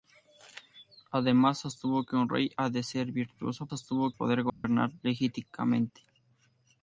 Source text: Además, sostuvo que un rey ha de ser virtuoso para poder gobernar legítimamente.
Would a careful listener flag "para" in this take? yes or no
yes